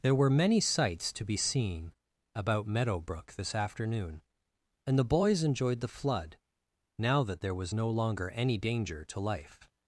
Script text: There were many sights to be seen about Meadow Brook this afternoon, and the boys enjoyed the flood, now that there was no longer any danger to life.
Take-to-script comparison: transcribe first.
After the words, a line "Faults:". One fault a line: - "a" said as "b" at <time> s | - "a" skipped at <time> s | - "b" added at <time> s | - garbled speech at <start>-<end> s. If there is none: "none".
There were many sights to be seen about Meadow Brook this afternoon, and the boys enjoyed the flood, now that there was no longer any danger to life.
Faults:
none